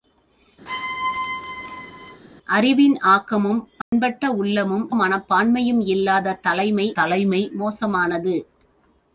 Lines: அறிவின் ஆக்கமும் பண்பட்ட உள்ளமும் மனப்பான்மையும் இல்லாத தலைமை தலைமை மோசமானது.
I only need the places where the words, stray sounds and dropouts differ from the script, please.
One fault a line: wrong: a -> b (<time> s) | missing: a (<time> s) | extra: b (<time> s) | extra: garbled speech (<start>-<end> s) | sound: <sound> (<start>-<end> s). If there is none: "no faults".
sound: squeak (0.7-2.2 s)
sound: dropout (3.8-3.9 s)